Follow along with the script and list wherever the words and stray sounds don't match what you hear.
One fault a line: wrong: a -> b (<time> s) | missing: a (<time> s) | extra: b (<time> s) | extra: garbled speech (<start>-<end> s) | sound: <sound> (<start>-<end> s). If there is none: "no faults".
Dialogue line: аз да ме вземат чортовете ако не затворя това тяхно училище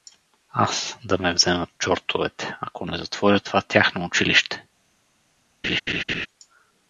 sound: laugh (5.6-6.3 s)